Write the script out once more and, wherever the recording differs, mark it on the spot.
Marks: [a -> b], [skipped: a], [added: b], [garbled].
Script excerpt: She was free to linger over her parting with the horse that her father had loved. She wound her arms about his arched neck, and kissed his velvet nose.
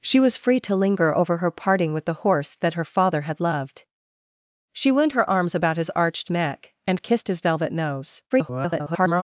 She was free to linger over her parting with the horse that her father had loved. She wound her arms about his arched neck, and kissed his velvet nose. [garbled]